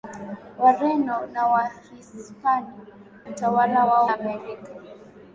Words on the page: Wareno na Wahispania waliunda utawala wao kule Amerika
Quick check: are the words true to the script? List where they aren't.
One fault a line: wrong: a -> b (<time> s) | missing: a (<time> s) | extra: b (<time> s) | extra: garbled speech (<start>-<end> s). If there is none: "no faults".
missing: waliunda (2.7 s)
missing: kule (4.1 s)